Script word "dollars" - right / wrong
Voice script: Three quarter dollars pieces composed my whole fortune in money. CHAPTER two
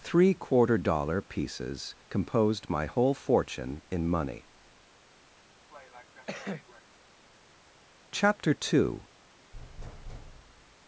wrong